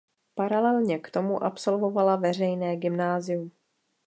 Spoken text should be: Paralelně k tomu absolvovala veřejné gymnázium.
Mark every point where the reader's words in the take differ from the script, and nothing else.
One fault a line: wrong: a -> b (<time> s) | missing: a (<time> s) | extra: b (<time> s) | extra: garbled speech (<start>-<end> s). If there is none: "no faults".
no faults